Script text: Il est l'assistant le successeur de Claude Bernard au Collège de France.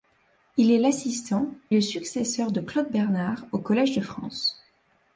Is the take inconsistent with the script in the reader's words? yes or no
no